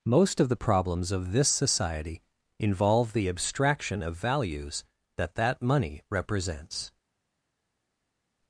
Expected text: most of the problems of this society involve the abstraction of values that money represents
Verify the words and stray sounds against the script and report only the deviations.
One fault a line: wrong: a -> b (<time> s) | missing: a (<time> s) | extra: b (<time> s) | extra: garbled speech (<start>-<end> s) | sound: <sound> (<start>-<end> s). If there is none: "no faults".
extra: that (5.3 s)